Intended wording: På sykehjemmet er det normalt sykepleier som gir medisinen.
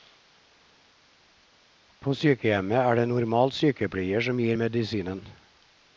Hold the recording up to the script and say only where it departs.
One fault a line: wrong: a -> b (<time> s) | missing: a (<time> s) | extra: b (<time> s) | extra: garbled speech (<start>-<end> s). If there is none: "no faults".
no faults